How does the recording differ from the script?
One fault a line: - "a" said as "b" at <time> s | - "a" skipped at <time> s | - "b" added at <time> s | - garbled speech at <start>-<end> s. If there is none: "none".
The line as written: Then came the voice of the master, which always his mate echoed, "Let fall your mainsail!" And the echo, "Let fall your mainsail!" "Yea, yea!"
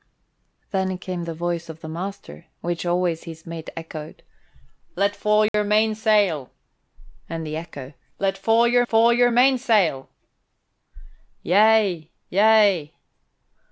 - "fall your" added at 8.8 s